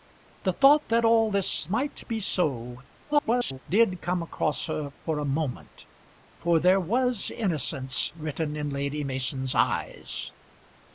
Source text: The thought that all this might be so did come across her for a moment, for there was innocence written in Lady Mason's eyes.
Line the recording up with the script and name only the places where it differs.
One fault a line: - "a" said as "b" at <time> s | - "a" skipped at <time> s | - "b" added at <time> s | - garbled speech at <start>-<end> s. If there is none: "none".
- garbled speech at 3.1-3.6 s